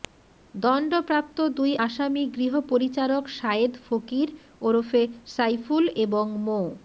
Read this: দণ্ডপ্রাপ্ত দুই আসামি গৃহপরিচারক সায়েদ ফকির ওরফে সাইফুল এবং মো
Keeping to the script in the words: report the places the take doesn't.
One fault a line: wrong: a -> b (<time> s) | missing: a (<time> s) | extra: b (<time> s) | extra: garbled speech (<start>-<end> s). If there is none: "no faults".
no faults